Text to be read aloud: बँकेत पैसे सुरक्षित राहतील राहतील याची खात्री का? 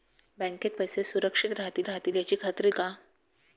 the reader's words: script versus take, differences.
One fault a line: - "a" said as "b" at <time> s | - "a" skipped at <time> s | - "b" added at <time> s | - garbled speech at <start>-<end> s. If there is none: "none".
none